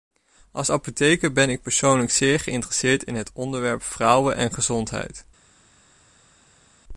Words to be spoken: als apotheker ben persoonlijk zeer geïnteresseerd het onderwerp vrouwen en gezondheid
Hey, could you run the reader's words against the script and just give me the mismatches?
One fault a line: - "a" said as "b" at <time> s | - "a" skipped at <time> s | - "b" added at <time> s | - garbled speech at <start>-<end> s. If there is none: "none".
- "ik" added at 1.5 s
- "in" added at 3.0 s